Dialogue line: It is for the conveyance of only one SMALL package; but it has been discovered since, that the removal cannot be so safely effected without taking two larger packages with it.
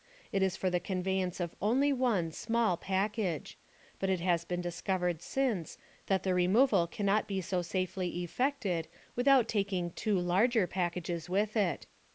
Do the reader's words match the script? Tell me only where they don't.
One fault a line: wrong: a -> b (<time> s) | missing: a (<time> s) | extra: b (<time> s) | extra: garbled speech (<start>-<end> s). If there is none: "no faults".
no faults